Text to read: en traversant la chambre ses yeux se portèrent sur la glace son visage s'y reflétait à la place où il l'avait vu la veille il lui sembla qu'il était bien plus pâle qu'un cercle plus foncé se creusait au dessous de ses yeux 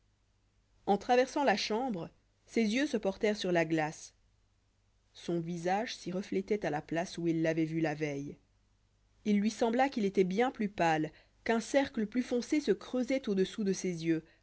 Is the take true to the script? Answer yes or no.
yes